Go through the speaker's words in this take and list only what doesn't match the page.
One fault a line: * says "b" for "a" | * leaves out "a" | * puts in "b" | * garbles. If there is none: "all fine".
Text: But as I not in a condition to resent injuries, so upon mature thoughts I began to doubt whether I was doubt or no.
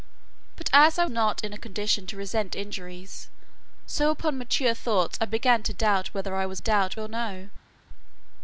all fine